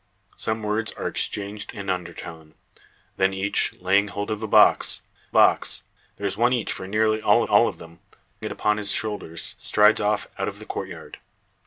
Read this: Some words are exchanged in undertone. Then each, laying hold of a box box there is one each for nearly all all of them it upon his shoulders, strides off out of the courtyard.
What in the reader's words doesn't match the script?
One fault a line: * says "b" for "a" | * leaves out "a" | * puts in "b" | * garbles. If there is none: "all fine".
all fine